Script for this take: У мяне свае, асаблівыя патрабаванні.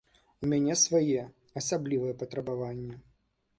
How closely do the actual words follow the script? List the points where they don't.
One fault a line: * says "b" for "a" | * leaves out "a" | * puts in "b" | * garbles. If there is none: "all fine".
all fine